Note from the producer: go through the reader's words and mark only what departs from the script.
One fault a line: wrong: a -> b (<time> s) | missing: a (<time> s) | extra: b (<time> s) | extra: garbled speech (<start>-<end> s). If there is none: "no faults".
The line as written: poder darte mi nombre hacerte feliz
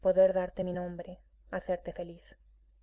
no faults